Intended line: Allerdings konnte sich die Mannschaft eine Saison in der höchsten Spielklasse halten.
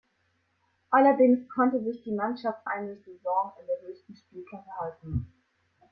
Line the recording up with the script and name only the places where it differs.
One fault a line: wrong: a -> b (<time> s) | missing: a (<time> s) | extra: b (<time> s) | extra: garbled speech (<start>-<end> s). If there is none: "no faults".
no faults